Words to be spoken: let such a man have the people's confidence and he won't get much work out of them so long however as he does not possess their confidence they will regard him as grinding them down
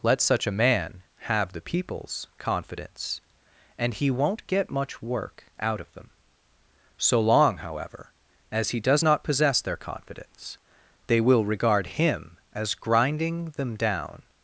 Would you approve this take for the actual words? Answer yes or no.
yes